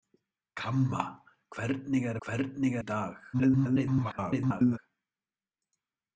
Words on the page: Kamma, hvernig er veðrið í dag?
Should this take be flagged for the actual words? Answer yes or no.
yes